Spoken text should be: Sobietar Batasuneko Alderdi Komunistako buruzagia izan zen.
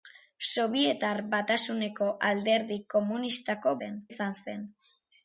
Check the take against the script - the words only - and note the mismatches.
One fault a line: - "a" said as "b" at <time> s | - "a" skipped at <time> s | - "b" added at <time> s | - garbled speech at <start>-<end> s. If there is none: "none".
- "buruzagia" said as "zen" at 3.8 s